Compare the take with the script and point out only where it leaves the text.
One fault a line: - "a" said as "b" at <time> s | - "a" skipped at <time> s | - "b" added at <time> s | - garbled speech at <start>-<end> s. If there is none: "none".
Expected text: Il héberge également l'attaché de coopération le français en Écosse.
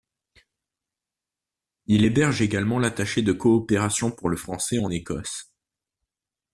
- "pour" added at 4.1 s